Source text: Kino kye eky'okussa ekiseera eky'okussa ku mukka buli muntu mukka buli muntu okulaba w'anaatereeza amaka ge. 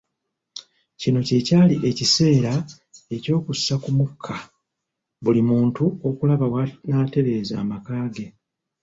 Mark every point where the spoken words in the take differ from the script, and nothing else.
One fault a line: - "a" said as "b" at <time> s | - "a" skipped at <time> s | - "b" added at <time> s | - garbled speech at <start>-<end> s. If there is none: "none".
- "eky'okussa" said as "kyali" at 1.5 s
- "mukka buli muntu" skipped at 5.8 s